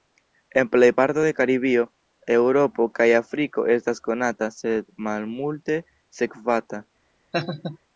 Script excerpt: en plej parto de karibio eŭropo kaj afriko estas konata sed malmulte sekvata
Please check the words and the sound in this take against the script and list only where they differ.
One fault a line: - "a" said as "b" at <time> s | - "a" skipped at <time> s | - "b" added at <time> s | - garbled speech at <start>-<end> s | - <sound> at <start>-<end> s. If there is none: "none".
- laugh at 7.3-7.8 s